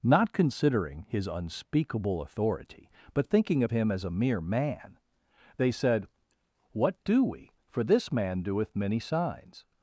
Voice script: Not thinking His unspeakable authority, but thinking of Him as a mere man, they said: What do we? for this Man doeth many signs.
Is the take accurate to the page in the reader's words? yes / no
no